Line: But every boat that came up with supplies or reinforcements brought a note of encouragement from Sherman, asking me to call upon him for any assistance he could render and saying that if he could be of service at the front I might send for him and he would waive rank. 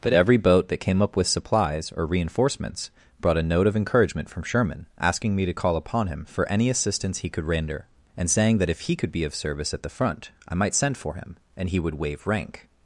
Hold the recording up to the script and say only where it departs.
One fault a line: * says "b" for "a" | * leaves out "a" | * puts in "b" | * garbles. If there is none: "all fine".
all fine